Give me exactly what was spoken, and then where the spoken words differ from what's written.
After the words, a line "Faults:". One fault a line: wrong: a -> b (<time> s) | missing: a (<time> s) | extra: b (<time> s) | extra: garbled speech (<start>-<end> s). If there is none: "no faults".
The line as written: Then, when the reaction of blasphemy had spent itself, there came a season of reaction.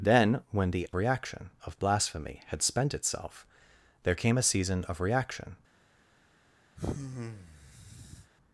Then, when the reaction of blasphemy had spent itself, there came a season of reaction.
Faults:
no faults